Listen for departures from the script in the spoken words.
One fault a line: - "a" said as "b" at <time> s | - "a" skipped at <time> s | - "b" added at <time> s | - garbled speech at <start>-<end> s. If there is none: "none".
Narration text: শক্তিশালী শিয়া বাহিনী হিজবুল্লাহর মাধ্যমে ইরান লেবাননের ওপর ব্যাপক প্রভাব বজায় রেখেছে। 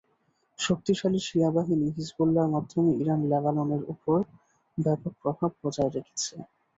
none